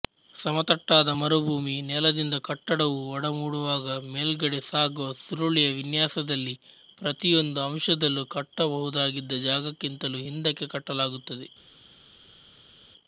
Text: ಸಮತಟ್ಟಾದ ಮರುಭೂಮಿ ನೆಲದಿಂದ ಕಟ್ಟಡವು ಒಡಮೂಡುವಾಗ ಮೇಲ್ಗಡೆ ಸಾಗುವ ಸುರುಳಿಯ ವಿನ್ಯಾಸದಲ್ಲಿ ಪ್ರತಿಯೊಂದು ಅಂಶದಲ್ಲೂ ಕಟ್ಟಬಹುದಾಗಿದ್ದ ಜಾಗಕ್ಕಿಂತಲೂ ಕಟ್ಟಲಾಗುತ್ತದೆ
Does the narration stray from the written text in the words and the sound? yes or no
yes